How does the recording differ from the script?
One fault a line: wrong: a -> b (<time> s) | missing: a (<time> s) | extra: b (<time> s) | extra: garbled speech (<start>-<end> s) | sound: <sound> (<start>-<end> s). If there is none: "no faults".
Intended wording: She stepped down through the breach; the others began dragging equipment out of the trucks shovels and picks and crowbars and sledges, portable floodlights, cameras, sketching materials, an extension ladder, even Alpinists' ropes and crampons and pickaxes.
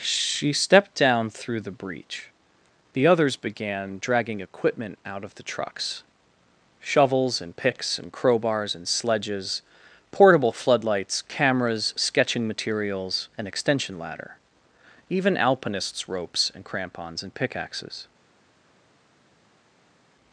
no faults